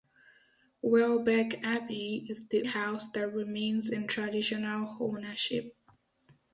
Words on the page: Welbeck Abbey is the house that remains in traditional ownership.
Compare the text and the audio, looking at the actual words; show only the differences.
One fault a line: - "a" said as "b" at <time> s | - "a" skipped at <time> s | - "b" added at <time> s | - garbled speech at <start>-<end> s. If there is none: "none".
none